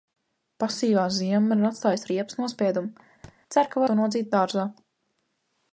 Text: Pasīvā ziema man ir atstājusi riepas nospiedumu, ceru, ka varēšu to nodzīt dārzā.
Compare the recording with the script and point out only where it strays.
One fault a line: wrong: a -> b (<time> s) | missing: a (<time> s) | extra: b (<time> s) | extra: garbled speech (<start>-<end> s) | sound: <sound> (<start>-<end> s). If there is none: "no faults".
sound: thud (3.2-3.4 s)
missing: varēšu (3.8 s)